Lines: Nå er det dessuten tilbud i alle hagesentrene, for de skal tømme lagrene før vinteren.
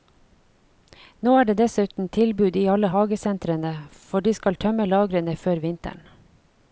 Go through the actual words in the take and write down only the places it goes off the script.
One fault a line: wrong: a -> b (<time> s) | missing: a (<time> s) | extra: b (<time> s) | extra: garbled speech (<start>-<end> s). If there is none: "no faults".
no faults